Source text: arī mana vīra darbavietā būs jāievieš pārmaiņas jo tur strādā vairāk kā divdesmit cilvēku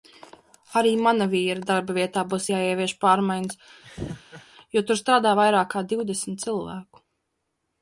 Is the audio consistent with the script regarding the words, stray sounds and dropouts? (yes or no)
no